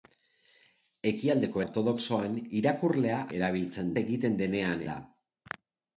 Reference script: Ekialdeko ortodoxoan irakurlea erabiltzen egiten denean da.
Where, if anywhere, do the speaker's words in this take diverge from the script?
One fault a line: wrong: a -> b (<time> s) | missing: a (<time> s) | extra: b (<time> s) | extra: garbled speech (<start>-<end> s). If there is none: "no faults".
no faults